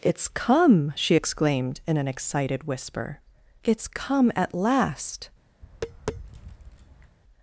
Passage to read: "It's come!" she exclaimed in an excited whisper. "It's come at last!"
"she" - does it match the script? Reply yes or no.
yes